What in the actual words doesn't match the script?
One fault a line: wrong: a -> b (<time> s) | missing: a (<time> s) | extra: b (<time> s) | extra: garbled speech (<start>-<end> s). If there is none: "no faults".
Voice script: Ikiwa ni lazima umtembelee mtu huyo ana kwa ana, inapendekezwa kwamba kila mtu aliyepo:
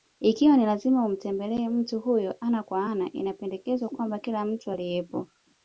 no faults